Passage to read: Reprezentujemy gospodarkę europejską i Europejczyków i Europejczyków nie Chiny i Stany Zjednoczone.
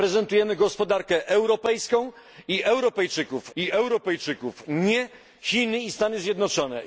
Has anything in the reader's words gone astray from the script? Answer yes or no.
no